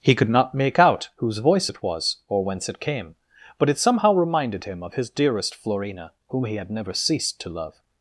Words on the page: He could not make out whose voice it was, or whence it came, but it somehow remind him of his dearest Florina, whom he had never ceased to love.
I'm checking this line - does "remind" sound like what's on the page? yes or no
no